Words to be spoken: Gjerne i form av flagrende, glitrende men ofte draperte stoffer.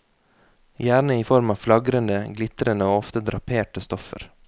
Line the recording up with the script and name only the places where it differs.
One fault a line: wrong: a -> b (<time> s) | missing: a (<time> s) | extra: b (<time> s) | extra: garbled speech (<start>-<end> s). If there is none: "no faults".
wrong: men -> og (2.9 s)